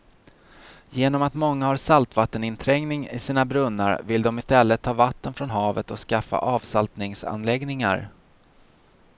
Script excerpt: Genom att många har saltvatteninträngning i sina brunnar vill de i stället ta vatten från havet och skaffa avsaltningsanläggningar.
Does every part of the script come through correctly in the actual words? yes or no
yes